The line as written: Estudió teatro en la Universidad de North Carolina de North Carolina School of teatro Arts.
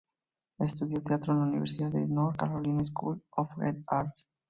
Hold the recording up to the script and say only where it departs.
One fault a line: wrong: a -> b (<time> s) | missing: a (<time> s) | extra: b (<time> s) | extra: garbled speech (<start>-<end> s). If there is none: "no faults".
missing: de North Carolina (2.8 s)
wrong: teatro -> the (3.6 s)